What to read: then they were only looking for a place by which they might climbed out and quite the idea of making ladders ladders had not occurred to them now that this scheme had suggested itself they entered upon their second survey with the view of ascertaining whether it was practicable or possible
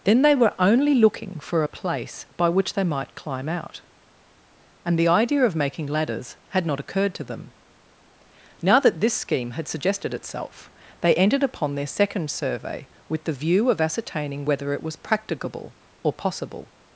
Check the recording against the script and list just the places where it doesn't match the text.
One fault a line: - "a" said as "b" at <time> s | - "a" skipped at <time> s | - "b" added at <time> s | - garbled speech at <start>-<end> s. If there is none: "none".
- "climbed" said as "climb" at 3.2 s
- "quite" skipped at 5.0 s
- "ladders" skipped at 6.4 s